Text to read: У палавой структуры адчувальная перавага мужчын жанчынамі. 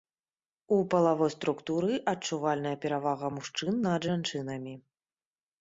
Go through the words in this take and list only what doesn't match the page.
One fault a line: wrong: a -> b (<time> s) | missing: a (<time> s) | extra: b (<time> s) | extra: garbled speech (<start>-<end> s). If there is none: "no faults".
extra: над (3.9 s)